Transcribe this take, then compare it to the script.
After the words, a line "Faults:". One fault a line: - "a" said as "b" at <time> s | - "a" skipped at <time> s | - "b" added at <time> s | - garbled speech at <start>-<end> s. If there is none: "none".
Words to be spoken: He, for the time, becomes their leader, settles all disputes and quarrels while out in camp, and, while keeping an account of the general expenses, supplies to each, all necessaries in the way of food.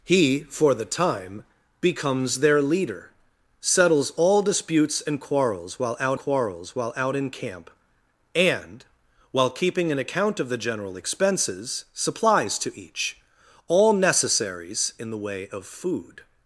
He, for the time, becomes their leader, settles all disputes and quarrels while out quarrels while out in camp, and, while keeping an account of the general expenses, supplies to each, all necessaries in the way of food.
Faults:
- "quarrels while out" added at 6.2 s